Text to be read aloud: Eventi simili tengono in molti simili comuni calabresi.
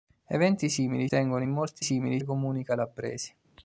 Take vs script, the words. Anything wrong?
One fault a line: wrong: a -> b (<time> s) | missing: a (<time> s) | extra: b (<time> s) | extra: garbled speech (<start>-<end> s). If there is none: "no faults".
no faults